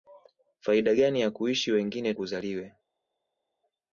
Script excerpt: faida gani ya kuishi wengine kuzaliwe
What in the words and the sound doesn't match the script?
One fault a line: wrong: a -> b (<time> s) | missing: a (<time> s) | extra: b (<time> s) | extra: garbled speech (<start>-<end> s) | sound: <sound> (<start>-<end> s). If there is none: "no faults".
no faults